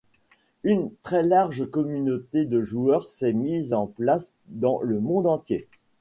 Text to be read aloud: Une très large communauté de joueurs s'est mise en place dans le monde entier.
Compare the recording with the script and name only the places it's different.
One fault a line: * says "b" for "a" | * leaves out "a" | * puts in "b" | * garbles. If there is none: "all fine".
all fine